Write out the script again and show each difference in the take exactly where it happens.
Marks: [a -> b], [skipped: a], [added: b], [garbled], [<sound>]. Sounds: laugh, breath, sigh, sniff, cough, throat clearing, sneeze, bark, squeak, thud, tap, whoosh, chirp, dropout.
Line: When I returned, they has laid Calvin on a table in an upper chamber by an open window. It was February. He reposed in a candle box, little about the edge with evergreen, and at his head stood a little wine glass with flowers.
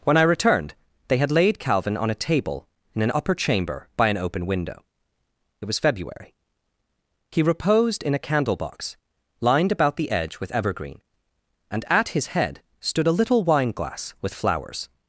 When I returned, they [has -> had] laid Calvin on a table in an upper chamber by an open window. It was February. He reposed in a candle box, [little -> lined] about the edge with evergreen, and at his head stood a little wine glass with flowers.